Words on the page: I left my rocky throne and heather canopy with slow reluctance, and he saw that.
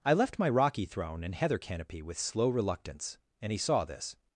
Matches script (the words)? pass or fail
fail